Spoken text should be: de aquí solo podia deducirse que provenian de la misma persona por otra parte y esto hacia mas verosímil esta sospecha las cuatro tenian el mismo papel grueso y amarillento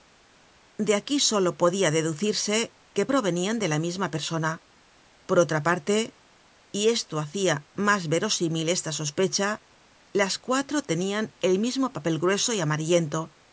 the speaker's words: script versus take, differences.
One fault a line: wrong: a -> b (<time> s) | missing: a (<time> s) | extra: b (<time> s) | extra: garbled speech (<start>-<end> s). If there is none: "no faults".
no faults